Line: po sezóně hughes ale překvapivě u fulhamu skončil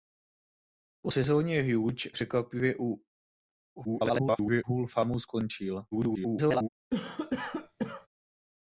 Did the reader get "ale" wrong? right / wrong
wrong